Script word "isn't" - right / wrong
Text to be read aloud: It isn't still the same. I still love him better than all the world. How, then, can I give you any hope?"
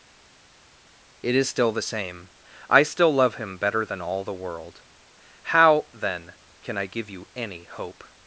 wrong